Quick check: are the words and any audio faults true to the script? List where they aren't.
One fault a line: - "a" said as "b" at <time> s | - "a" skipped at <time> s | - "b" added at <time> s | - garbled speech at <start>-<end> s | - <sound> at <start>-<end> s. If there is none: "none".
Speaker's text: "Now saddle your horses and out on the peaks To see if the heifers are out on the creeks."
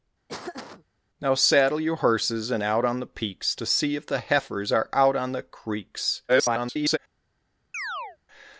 - laugh at 0.3-0.9 s
- garbled speech at 6.3-7.0 s
- chirp at 7.7-8.2 s